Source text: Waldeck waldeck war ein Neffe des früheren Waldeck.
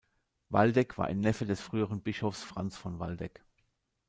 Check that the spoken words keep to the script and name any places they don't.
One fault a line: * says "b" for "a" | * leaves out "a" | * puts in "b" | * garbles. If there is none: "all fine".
* leaves out "waldeck"
* puts in "Bischofs Franz von"